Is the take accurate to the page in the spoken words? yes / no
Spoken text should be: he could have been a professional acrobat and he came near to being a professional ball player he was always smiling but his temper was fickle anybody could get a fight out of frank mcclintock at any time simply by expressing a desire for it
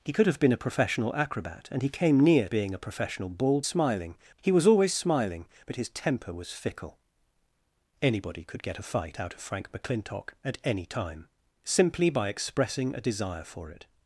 no